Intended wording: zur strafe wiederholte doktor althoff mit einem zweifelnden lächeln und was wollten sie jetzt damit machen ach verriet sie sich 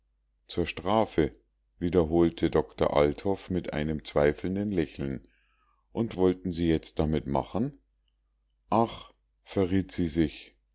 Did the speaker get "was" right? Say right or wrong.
wrong